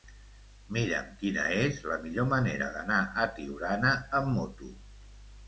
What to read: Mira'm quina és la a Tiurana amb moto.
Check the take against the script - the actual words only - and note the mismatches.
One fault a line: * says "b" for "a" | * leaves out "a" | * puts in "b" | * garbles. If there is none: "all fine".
* puts in "millor manera d'anar"